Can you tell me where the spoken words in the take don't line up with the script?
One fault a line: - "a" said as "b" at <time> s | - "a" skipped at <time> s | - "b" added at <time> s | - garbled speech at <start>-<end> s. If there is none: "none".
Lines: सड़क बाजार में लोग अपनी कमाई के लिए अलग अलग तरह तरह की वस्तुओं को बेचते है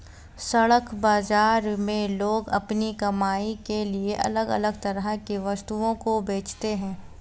- "तरह" skipped at 5.1 s